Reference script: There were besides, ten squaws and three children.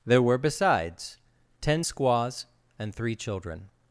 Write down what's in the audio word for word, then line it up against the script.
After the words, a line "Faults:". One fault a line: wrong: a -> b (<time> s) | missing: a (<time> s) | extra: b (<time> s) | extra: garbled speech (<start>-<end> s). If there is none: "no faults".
There were besides, ten squaws and three children.
Faults:
no faults